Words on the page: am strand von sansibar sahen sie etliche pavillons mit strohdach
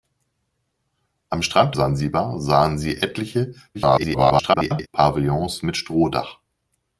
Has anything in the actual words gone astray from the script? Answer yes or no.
yes